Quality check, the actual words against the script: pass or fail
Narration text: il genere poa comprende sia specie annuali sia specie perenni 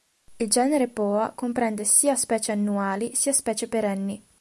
pass